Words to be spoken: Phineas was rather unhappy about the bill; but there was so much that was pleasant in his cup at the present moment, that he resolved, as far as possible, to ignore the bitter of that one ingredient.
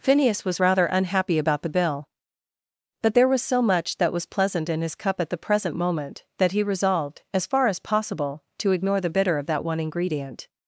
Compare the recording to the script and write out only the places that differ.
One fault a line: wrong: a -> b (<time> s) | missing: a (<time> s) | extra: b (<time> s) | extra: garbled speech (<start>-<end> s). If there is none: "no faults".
no faults